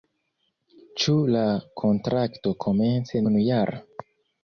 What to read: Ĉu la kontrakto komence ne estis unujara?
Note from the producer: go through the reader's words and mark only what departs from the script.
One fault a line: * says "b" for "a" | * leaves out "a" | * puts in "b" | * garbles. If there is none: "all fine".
* leaves out "ne estis"